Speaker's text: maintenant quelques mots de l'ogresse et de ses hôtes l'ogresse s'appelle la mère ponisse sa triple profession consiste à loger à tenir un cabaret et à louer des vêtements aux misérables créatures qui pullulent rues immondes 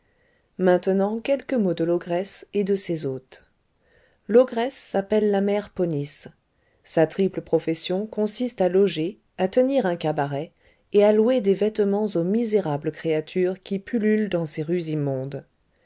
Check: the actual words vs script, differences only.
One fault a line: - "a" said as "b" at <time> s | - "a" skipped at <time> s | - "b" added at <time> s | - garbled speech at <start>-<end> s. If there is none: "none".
- "dans ces" added at 14.3 s